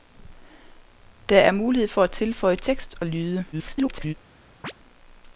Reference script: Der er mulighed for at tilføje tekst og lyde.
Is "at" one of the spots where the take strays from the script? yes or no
no